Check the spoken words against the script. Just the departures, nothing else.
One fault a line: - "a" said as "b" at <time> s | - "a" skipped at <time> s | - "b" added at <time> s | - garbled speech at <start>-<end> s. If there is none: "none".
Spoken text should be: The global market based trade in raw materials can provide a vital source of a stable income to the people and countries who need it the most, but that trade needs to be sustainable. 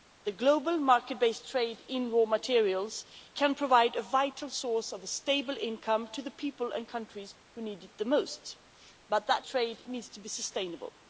none